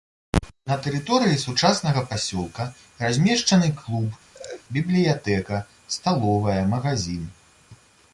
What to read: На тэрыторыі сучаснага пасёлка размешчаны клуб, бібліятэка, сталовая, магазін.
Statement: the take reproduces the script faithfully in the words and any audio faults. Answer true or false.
false